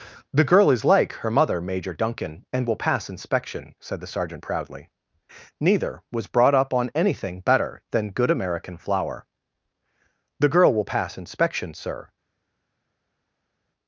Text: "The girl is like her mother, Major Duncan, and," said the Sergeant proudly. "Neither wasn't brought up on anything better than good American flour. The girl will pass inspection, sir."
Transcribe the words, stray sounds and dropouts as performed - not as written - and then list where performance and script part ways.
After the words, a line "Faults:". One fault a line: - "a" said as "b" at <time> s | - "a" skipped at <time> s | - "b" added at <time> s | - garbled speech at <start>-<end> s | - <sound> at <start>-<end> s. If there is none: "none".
"The girl is like her mother, Major Duncan, and will pass inspection," said the Sergeant proudly. "Neither was brought up on anything better than good American flour. The girl will pass inspection, sir."
Faults:
- "will pass inspection" added at 2.6 s
- "wasn't" said as "was" at 6.1 s